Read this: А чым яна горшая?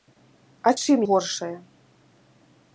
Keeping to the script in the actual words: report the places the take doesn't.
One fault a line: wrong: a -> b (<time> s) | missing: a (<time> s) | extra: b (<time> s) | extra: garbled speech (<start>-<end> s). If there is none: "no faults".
missing: яна (1.0 s)